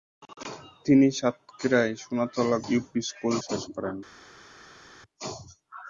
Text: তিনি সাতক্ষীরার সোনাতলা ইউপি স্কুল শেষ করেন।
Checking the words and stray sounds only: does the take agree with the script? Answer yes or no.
yes